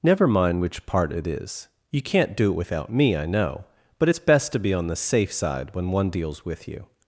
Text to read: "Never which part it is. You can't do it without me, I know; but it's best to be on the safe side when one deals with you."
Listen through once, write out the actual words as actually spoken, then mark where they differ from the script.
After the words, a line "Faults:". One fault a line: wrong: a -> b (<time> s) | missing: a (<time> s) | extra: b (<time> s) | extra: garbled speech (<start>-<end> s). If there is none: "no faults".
"Never mind which part it is. You can't do it without me, I know; but it's best to be on the safe side when one deals with you."
Faults:
extra: mind (0.3 s)